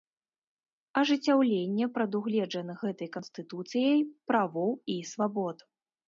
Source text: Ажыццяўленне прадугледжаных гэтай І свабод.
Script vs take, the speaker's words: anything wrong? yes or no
yes